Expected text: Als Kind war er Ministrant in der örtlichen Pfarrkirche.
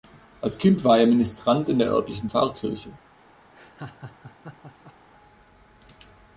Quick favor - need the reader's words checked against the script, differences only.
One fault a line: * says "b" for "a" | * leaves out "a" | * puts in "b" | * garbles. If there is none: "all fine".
all fine